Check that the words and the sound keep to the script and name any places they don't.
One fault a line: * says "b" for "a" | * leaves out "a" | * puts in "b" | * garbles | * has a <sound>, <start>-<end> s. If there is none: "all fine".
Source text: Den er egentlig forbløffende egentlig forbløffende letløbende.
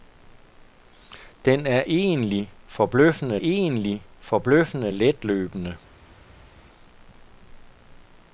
all fine